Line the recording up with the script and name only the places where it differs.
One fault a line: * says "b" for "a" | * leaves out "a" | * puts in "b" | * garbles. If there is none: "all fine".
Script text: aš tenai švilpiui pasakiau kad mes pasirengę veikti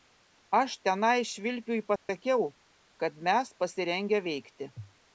all fine